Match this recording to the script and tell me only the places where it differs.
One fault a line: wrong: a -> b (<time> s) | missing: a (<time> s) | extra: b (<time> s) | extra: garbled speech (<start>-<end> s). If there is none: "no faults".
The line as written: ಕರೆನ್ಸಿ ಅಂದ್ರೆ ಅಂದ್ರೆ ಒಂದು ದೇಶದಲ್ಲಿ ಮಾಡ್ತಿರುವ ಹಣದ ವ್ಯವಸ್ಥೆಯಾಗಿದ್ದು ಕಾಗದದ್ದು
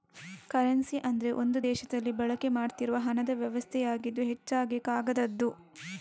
missing: ಅಂದ್ರೆ (1.3 s)
extra: ಬಳಕೆ (2.2 s)
extra: ಹೆಚ್ಚಾಗಿ (4.3 s)